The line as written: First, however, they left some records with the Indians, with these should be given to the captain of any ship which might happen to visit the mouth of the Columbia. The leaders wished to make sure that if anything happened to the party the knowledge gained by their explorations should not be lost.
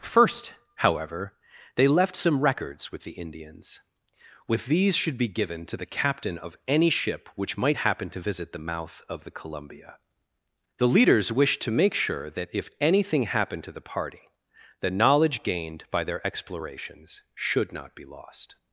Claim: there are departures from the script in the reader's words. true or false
false